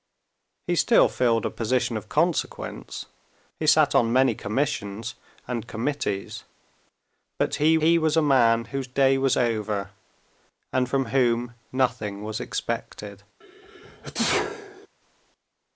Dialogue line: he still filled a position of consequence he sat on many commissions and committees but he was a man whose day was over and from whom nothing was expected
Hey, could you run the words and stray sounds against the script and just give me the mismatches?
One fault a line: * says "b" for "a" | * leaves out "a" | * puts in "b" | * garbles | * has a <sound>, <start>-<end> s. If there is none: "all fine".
* puts in "he"
* has a sneeze, 13.4-14.9 s